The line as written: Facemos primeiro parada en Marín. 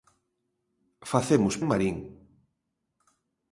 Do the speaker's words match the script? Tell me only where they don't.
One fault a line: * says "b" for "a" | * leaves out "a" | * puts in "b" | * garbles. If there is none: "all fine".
* leaves out "primeiro parada"